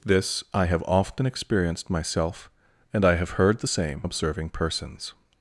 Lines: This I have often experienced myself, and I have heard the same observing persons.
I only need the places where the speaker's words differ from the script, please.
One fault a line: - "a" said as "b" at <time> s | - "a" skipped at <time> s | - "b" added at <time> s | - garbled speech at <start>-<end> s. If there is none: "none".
none